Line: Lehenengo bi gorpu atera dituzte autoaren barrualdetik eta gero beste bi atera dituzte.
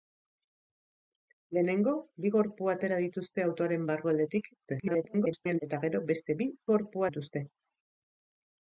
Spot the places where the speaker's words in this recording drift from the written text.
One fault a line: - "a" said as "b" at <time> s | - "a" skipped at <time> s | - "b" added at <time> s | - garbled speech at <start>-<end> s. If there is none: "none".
- garbled speech at 4.6-5.6 s
- "atera" said as "gorpu" at 6.7 s